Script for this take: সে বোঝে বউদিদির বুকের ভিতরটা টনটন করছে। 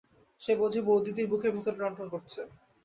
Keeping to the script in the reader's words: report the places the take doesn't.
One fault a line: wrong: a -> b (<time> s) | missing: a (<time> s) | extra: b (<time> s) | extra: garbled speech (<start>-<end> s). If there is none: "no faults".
no faults